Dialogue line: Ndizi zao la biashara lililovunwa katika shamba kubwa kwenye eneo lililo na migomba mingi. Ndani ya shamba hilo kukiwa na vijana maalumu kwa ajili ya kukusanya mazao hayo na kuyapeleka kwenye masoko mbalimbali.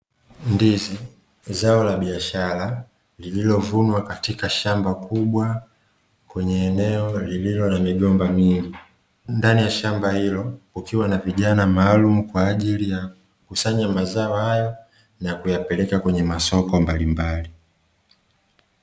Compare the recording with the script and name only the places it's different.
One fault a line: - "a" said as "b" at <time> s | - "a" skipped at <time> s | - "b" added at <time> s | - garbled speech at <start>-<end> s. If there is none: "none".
none